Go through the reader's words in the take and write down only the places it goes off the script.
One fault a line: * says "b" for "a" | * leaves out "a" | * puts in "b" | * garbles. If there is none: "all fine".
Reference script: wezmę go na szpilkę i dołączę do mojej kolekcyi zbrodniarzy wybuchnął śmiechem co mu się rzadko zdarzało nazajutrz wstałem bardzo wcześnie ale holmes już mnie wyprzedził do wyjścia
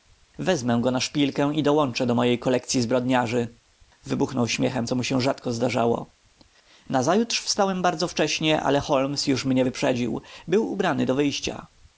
* puts in "był ubrany"